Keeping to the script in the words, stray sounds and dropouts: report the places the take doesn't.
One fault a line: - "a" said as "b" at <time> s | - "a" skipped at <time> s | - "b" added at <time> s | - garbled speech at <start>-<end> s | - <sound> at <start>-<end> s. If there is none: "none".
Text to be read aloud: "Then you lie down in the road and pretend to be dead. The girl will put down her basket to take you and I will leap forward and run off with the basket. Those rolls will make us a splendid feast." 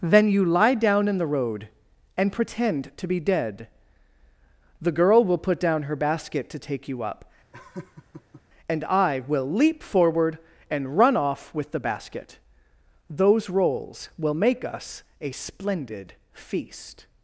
- "up" added at 7.0 s
- laugh at 7.5-8.4 s